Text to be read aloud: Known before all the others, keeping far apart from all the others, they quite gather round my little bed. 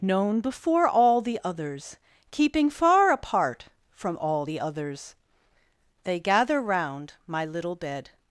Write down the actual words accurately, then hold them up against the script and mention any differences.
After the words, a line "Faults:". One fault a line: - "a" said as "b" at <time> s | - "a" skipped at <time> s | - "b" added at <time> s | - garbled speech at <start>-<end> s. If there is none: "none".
Known before all the others, keeping far apart from all the others, they gather round my little bed.
Faults:
- "quite" skipped at 6.2 s